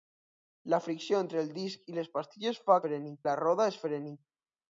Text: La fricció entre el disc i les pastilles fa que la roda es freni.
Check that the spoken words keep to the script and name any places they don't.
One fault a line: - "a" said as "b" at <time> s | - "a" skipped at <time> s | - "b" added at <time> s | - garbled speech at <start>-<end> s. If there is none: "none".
- "que" said as "freni" at 2.9 s